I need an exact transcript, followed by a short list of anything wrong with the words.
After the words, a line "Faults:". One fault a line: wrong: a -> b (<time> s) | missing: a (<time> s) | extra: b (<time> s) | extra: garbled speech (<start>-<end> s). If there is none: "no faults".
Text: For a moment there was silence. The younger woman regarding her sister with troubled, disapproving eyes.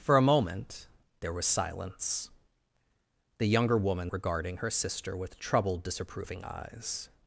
For a moment there was silence. The younger woman regarding her sister with troubled, disapproving eyes.
Faults:
no faults